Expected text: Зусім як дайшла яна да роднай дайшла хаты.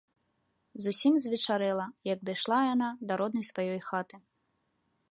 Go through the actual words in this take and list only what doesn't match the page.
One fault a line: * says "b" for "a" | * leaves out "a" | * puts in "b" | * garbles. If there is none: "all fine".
* puts in "звечарэла"
* says "сваёй" for "дайшла"